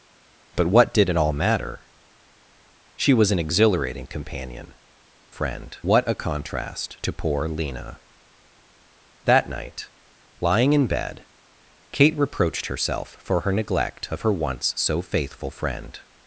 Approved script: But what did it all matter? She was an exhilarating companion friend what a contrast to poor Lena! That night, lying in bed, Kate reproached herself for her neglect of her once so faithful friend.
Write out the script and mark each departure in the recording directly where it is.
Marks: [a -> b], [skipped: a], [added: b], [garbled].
But what did it all matter? She was an exhilarating companion friend what a contrast to poor Lena! That night, lying in bed, Kate reproached herself for her neglect of her once so faithful friend.